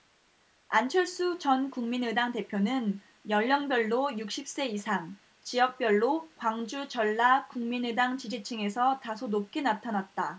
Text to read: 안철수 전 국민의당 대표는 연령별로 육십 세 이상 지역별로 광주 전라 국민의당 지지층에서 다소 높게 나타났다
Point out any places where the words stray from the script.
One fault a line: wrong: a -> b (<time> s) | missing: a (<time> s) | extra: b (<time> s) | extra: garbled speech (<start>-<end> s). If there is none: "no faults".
no faults